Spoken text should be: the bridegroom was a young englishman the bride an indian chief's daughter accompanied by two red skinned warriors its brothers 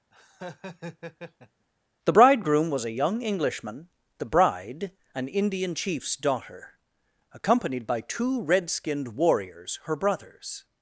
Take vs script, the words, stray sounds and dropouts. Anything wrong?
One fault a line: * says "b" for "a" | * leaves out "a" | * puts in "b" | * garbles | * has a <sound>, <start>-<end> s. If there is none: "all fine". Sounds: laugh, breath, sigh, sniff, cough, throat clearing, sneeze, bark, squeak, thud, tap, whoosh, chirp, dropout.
* has a laugh, 0.1-1.7 s
* says "her" for "its"